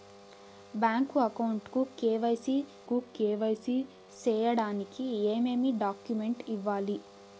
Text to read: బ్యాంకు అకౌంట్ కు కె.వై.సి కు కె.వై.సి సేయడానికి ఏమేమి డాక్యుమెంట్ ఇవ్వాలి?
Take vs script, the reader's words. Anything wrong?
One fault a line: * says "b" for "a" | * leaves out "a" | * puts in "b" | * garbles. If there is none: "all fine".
all fine